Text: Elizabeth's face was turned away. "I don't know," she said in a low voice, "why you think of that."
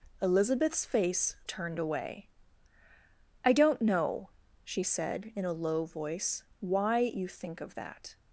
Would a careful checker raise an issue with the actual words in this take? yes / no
yes